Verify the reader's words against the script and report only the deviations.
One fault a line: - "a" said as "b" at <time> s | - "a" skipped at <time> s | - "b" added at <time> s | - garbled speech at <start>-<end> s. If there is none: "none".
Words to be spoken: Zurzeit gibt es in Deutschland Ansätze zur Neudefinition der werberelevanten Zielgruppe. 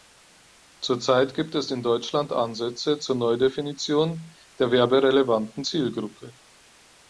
none